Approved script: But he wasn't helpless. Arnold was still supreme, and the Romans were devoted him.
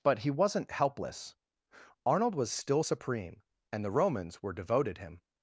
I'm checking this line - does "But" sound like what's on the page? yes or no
yes